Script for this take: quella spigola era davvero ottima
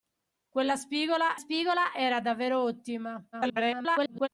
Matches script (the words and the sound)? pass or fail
fail